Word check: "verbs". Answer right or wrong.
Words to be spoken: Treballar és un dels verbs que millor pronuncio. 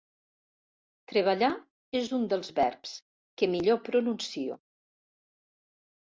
right